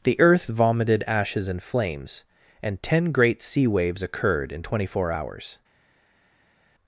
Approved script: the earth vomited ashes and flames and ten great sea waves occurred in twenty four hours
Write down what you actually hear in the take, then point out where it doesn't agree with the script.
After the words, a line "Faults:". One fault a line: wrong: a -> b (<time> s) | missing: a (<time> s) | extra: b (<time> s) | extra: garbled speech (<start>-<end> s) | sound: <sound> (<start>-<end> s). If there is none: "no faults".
the earth vomited ashes and flames and ten great sea waves occurred in twenty four hours
Faults:
no faults